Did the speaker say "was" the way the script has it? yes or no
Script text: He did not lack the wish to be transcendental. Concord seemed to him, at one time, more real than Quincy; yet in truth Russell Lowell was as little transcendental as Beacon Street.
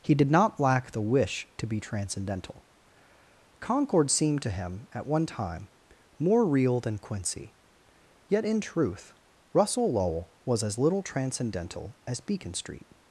yes